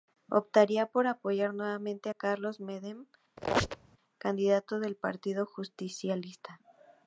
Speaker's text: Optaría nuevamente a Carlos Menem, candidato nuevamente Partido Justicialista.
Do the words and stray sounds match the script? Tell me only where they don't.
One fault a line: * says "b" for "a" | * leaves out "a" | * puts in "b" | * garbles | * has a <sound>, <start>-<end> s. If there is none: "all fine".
* puts in "por apoyar"
* has a squeak, 3.4-4.0 s
* says "del" for "nuevamente"